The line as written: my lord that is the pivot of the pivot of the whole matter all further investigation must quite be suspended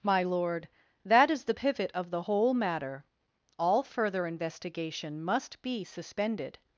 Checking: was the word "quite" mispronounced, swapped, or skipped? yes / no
yes